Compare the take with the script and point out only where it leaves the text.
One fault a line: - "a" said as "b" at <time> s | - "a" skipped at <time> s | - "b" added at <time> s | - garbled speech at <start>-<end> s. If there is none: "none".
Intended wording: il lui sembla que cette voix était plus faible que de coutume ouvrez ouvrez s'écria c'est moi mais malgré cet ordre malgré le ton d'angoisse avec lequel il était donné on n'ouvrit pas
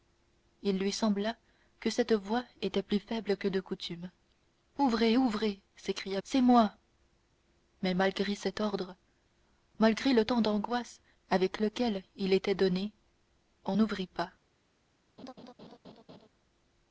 none